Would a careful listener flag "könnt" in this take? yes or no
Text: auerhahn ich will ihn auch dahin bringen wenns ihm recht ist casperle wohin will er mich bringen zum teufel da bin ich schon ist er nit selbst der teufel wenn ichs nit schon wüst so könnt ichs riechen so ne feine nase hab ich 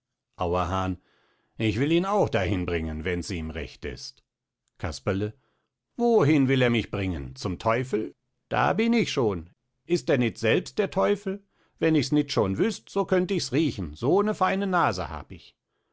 no